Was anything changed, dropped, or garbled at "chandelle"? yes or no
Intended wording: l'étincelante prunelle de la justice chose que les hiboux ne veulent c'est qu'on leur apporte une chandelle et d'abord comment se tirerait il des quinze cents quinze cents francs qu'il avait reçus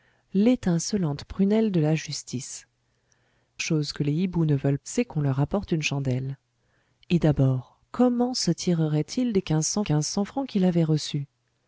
no